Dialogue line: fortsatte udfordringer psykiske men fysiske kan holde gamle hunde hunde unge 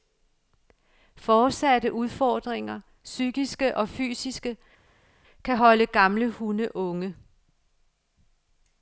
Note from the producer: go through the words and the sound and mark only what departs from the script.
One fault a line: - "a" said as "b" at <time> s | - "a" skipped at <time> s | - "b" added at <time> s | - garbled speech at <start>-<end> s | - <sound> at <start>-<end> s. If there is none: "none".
- "men" said as "og" at 3.8 s
- "hunde" skipped at 6.8 s